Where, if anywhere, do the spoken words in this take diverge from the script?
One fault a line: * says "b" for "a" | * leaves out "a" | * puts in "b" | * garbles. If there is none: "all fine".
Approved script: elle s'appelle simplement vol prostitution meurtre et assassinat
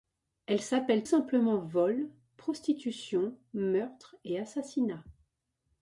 all fine